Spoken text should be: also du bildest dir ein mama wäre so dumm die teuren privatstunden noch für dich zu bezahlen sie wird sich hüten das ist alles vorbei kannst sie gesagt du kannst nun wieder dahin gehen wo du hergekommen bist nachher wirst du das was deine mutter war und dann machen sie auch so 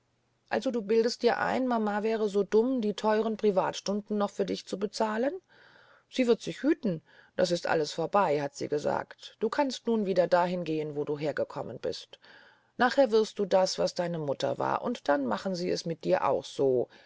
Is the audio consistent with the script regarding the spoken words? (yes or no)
no